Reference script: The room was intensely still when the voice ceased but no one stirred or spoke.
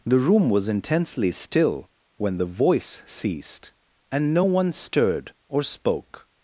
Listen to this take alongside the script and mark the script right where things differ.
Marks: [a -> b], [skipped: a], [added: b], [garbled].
The room was intensely still when the voice ceased [but -> and] no one stirred or spoke.